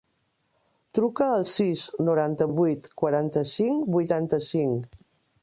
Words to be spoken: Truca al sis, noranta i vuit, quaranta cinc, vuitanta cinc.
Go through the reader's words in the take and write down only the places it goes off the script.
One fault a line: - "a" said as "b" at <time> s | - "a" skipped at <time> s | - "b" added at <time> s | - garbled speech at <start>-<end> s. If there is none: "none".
none